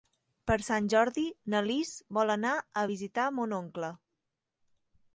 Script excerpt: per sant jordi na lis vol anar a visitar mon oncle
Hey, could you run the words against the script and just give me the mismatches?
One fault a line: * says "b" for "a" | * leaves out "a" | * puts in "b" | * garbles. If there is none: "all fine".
all fine